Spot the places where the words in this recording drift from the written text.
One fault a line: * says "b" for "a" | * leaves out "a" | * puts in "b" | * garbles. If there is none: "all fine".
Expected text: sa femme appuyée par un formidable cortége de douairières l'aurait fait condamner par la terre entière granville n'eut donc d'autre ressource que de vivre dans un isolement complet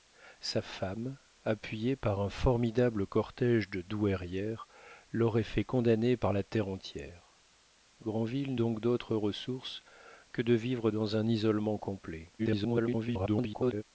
* leaves out "n'eut"
* garbles